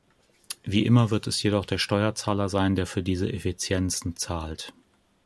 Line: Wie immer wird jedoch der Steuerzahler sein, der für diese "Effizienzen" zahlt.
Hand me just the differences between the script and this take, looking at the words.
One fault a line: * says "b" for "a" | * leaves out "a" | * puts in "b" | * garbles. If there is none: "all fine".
* puts in "es"